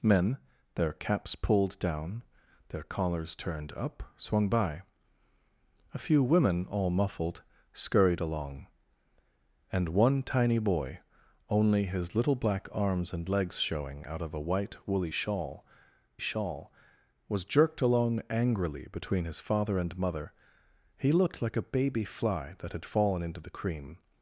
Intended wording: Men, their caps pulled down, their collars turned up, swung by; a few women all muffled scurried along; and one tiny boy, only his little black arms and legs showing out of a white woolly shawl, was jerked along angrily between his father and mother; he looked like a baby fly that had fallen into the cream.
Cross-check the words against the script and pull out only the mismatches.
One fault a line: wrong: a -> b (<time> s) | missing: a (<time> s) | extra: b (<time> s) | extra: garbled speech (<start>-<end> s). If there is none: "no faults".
extra: shawl (16.2 s)